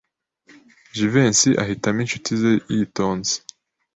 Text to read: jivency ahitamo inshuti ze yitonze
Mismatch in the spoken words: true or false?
false